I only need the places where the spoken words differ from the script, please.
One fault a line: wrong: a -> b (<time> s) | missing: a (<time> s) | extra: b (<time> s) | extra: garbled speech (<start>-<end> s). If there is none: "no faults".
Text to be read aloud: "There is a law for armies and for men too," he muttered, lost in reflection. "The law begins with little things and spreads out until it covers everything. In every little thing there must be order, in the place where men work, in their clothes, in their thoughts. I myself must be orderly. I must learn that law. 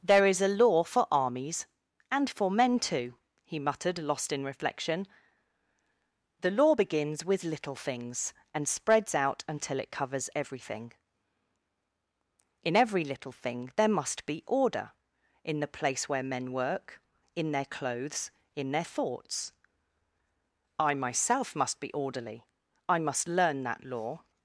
no faults